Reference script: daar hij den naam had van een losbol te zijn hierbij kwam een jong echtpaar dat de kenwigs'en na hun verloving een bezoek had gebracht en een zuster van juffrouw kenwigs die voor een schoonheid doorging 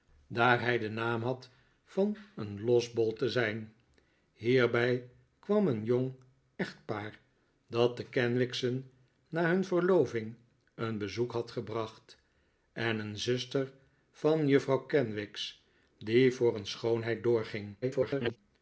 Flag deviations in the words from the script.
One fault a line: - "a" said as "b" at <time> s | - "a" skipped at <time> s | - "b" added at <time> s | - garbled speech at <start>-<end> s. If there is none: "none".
- garbled speech at 17.8-18.4 s